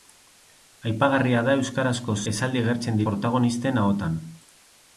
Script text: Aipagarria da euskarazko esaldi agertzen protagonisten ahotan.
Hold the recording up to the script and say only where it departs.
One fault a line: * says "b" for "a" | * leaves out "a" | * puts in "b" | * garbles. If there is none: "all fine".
all fine